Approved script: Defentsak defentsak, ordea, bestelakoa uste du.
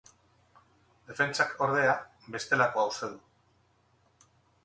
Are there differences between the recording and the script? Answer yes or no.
yes